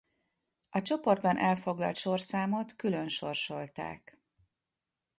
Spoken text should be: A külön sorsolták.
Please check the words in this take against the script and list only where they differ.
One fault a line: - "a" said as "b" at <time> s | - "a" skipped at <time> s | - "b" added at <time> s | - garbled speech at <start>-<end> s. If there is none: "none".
- "csoportban elfoglalt sorszámot" added at 0.8 s